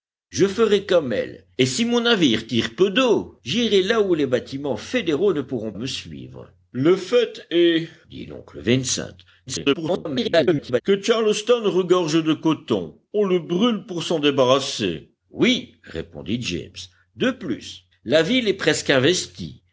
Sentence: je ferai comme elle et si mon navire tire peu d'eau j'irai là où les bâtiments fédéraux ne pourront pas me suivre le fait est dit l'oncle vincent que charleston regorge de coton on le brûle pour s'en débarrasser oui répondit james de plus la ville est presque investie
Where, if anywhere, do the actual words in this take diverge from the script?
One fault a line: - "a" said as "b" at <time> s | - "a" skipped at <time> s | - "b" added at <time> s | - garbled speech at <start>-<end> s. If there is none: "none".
- "pas" skipped at 5.7 s
- garbled speech at 9.5-10.8 s